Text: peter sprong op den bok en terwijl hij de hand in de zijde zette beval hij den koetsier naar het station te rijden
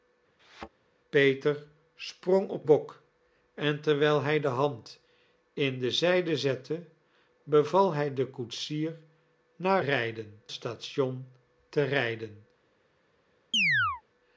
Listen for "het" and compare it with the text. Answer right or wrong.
wrong